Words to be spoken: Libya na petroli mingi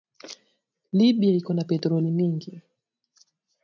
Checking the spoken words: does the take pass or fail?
fail